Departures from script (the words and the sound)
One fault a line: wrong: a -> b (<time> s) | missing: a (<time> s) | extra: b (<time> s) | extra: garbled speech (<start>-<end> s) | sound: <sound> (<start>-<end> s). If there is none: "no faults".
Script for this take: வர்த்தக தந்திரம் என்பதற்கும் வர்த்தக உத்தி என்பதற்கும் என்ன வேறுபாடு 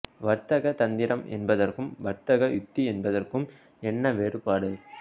no faults